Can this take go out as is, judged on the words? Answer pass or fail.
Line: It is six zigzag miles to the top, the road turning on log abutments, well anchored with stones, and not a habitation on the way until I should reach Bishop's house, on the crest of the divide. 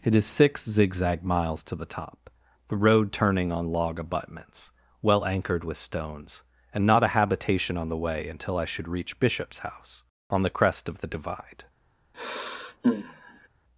pass